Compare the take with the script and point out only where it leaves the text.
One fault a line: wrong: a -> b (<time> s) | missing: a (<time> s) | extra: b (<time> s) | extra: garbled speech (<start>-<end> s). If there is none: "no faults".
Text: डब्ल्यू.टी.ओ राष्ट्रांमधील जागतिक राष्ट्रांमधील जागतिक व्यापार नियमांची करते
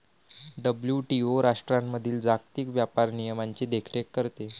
missing: राष्ट्रांमधील जागतिक (2.7 s)
extra: देखरेख (3.7 s)